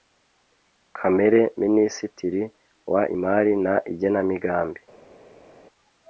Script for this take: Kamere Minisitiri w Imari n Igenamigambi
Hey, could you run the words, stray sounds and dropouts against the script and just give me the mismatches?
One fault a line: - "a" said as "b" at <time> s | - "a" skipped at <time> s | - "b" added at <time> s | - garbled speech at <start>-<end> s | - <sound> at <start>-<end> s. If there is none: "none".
none